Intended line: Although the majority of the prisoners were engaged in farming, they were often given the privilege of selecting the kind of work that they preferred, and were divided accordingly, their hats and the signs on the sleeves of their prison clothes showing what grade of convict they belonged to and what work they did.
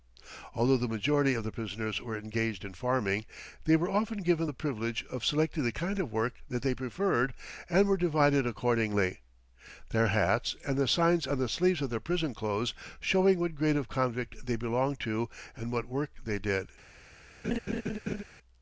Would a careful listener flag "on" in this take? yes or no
no